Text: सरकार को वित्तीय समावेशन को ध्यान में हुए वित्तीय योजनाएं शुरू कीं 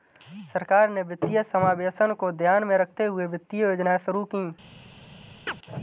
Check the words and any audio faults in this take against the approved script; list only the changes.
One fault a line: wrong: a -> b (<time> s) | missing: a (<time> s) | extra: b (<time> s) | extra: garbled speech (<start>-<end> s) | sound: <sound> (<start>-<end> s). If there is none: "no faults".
wrong: को -> ने (0.9 s)
extra: रखते (2.8 s)
sound: chirp (5.5-5.6 s)